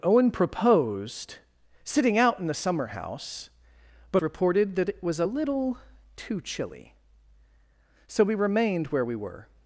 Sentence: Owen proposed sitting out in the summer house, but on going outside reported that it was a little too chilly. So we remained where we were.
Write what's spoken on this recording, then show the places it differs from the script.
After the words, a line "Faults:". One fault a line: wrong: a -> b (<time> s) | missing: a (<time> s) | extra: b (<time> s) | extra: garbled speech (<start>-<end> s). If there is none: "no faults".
Owen proposed sitting out in the summer house, but reported that it was a little too chilly. So we remained where we were.
Faults:
missing: on going outside (4.2 s)